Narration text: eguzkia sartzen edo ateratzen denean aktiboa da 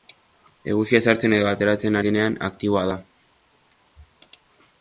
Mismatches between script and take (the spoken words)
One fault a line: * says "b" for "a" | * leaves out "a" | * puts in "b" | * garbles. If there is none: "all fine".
all fine